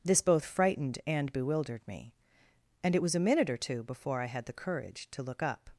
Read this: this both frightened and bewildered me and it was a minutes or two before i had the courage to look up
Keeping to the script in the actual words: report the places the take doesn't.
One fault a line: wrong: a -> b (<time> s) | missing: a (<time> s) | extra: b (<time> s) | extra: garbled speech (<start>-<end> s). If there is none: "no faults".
wrong: minutes -> minute (3.2 s)